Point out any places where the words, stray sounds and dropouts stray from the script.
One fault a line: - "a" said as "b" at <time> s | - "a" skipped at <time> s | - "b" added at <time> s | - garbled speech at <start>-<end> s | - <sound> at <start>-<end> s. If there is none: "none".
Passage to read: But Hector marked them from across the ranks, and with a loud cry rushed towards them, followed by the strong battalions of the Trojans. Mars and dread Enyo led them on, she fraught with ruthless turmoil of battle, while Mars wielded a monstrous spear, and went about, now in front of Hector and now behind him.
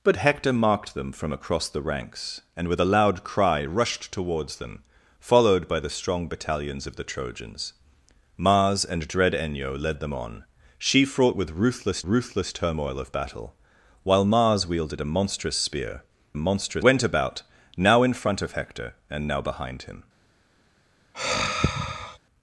- "ruthless" added at 12.0 s
- "and" said as "monstrous" at 16.4 s
- sigh at 21.1-22.2 s